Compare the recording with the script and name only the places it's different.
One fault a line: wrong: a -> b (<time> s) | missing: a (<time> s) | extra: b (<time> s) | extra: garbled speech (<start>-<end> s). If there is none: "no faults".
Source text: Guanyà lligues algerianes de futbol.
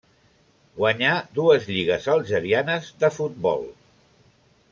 extra: dues (1.4 s)